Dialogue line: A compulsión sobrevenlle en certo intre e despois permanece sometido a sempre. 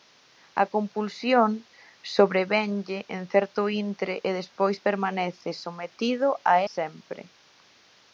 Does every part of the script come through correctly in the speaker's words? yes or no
yes